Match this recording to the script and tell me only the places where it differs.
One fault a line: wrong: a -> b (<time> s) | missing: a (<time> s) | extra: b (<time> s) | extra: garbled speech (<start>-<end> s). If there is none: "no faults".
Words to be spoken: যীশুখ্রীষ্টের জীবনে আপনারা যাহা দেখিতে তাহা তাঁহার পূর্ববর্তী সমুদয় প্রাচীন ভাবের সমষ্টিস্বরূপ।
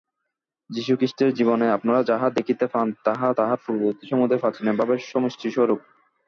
extra: পান (2.7 s)